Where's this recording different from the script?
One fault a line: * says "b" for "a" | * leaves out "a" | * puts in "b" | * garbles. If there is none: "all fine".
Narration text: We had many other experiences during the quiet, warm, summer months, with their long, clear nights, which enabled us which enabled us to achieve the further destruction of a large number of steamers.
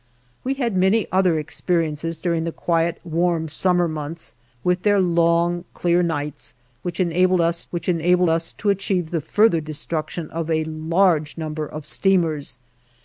all fine